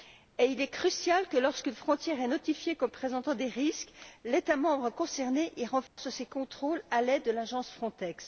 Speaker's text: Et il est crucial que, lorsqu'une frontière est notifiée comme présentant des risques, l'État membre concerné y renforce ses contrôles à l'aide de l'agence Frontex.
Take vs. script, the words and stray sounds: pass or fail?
fail